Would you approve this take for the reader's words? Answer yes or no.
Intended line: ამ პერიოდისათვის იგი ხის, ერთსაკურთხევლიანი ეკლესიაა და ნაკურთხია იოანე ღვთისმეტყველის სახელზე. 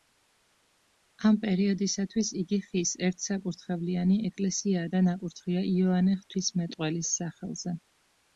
yes